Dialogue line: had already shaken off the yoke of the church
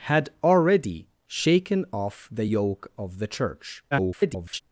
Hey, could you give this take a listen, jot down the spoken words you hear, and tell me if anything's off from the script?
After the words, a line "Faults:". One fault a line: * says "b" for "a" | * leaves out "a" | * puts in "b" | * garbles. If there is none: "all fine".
had already shaken off the yoke of the church [garbled]
Faults:
* garbles